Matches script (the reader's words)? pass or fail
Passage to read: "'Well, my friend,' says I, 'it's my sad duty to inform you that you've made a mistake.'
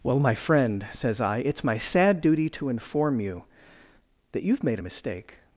pass